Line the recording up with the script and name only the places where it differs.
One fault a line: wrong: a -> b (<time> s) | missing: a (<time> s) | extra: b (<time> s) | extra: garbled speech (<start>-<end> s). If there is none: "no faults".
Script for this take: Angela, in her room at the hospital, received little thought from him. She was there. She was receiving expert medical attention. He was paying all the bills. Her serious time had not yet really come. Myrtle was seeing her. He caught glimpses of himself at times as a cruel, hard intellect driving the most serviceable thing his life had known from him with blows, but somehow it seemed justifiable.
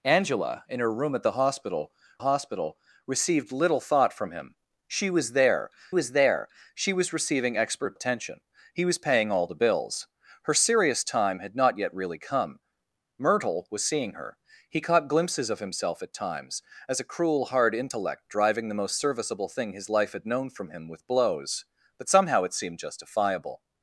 extra: hospital (2.2 s)
extra: was there (5.9 s)
missing: medical (8.0 s)